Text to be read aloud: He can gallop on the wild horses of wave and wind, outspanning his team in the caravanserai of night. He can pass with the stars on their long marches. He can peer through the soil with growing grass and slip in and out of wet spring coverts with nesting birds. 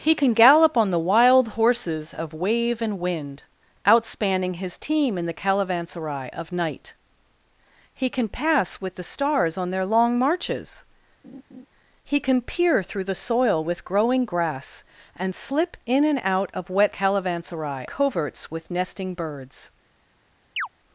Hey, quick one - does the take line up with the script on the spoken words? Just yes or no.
no